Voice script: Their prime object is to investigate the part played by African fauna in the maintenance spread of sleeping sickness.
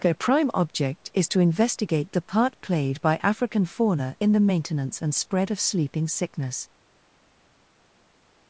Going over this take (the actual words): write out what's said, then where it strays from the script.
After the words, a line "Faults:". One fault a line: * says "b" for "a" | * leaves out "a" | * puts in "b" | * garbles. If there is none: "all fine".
Their prime object is to investigate the part played by African fauna in the maintenance and spread of sleeping sickness.
Faults:
* puts in "and"